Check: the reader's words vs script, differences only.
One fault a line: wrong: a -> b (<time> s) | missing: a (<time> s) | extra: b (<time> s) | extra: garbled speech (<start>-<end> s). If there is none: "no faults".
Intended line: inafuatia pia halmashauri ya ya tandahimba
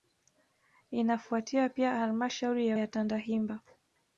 no faults